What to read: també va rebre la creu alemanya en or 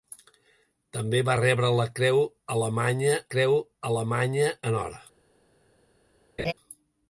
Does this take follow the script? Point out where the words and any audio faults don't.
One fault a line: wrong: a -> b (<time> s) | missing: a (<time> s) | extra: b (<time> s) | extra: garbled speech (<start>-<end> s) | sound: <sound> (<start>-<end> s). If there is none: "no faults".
extra: creu alemanya (3.3 s)
sound: laugh (6.4-6.5 s)